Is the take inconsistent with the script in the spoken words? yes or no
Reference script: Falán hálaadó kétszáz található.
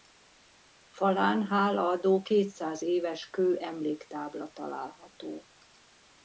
yes